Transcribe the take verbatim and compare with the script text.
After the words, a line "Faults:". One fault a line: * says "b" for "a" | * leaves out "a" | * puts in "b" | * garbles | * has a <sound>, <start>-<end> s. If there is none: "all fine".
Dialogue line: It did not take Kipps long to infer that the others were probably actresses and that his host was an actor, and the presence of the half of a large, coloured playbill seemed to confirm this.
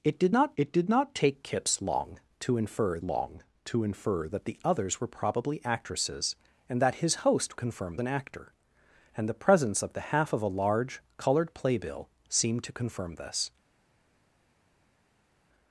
It did not it did not take Kipps long to infer long to infer that the others were probably actresses and that his host confirm an actor, and the presence of the half of a large, coloured playbill seemed to confirm this.
Faults:
* puts in "it did not"
* puts in "long to infer"
* says "confirm" for "was"